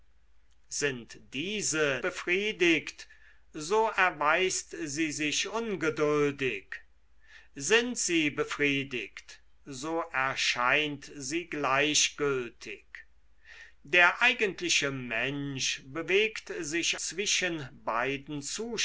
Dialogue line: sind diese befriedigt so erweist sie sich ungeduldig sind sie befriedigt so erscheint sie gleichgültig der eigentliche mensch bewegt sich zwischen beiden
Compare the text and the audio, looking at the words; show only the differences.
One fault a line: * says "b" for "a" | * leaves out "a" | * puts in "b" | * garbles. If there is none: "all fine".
all fine